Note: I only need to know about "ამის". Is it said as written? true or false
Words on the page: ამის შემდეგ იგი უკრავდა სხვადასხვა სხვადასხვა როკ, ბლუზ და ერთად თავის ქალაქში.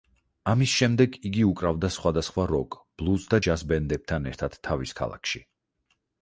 true